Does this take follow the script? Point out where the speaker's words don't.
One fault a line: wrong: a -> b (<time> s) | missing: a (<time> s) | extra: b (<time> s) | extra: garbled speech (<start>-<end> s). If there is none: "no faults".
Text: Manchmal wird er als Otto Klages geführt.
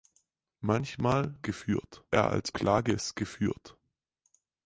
wrong: wird -> geführt (1.4 s)
missing: Otto (2.5 s)